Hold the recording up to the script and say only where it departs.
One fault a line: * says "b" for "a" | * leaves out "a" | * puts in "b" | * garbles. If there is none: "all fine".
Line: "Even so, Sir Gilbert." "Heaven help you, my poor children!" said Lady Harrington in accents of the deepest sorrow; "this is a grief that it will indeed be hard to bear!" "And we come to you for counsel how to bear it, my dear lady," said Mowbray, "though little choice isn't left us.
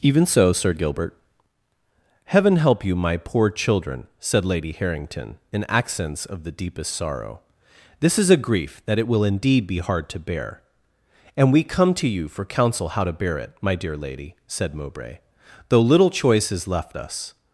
* says "is" for "isn't"